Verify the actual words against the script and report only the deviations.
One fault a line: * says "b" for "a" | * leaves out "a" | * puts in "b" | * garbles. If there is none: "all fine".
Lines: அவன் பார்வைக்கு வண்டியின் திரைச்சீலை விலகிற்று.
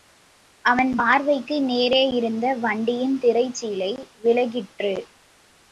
* puts in "நேரே இருந்த"